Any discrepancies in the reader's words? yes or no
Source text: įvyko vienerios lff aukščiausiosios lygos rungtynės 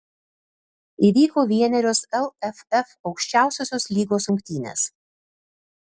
no